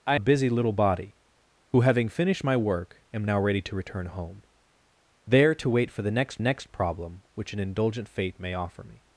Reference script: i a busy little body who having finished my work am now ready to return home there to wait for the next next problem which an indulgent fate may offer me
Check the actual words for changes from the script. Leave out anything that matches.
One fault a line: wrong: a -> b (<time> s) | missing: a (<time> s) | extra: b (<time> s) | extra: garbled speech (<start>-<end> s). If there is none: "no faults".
no faults